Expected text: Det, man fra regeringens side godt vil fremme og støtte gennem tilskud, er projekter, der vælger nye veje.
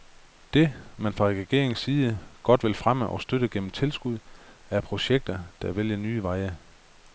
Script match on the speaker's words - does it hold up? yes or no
yes